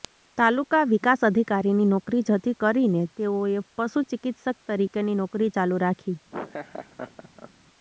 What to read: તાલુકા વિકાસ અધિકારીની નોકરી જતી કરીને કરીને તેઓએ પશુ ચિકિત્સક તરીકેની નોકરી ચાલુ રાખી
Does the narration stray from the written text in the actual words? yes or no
yes